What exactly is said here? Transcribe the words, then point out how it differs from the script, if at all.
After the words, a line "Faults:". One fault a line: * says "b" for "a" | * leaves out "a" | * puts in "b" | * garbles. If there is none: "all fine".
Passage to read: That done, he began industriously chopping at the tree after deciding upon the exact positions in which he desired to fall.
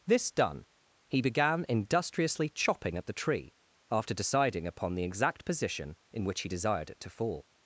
This done, he began industriously chopping at the tree after deciding upon the exact position in which he desired it to fall.
Faults:
* says "This" for "That"
* says "position" for "positions"
* puts in "it"